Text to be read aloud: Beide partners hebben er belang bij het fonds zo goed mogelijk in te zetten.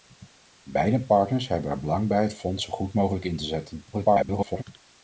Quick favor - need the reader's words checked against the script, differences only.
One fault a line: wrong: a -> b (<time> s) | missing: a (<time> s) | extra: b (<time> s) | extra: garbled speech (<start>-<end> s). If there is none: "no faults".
extra: garbled speech (3.9-4.6 s)